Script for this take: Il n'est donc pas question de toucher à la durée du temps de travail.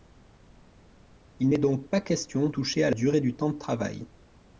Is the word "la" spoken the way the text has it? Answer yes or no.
no